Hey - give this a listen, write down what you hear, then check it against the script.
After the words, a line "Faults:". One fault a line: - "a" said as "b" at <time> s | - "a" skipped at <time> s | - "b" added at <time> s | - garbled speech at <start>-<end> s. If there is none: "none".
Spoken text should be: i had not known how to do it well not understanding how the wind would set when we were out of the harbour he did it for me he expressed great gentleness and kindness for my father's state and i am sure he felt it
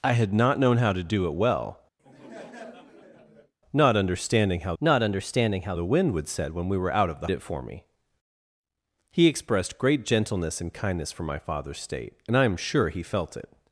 i had not known how to do it well not understanding how not understanding how the wind would set when we were out of the it for me he expressed great gentleness and kindness for my father's state and i am sure he felt it
Faults:
- "not understanding how" added at 4.8 s
- "harbour he did" skipped at 7.3 s